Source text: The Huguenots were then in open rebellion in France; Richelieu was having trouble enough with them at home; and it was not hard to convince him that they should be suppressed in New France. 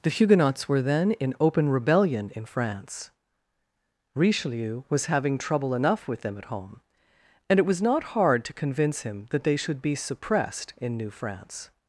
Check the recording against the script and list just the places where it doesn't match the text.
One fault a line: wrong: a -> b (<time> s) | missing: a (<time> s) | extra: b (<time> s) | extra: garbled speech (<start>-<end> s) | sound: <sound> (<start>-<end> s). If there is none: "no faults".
no faults